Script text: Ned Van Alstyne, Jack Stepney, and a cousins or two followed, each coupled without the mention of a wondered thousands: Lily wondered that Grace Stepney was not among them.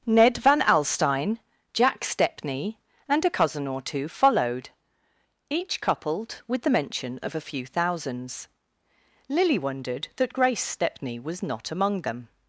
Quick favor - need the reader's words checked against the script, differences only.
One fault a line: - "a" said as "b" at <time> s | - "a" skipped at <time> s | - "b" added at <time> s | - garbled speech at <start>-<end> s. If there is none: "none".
- "cousins" said as "cousin" at 3.3 s
- "without" said as "with" at 6.5 s
- "wondered" said as "few" at 7.4 s